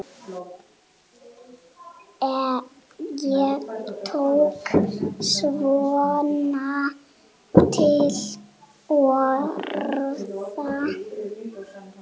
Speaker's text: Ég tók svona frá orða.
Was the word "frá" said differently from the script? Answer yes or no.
yes